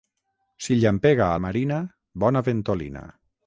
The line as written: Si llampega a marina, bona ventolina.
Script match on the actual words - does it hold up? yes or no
yes